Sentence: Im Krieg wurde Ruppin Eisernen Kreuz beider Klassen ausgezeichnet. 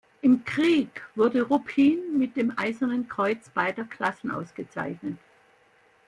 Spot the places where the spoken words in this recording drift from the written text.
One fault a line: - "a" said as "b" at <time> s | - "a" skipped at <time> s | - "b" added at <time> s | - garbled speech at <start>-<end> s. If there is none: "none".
- "mit dem" added at 2.2 s